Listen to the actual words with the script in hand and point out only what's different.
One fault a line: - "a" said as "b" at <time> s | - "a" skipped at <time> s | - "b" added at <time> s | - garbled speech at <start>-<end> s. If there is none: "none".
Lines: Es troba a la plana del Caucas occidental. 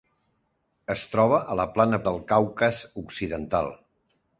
none